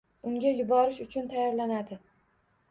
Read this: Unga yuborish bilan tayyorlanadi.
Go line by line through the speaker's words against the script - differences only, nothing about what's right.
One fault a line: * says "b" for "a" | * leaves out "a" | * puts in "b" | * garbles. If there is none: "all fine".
* says "uchun" for "bilan"